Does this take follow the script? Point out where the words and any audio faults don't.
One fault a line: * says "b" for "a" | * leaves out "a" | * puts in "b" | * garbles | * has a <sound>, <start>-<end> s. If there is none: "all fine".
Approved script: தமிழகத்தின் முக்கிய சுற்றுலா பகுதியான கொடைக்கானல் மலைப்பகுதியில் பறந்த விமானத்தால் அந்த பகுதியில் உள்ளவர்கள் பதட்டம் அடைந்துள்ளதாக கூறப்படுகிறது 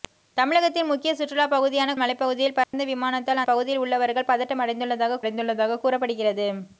* leaves out "கொடைக்கானல்"
* has a dropout, 2.6-2.7 s
* leaves out "அந்த"
* puts in "அடைந்துள்ளதாக"